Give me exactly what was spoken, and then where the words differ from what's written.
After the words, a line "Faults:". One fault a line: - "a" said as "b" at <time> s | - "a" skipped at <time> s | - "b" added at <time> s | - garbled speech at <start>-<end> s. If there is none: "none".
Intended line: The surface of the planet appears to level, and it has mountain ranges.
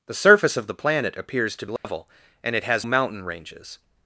The surface of the planet appears to level, and it has mountain ranges.
Faults:
none